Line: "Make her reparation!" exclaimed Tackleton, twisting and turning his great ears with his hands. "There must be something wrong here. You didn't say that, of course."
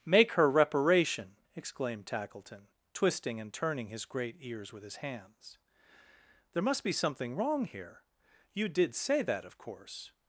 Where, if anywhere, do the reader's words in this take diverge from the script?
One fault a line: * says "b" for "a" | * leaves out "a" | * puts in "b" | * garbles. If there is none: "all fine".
* says "did" for "didn't"